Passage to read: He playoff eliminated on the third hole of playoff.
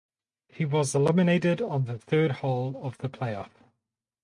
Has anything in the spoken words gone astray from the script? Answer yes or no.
yes